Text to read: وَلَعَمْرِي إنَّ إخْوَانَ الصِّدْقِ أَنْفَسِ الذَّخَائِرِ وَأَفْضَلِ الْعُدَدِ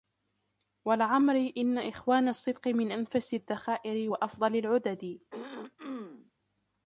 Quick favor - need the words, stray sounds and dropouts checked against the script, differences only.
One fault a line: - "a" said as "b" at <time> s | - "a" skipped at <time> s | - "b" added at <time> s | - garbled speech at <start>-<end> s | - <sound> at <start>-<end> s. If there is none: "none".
- "مِنْ" added at 2.7 s
- throat clearing at 5.3-6.3 s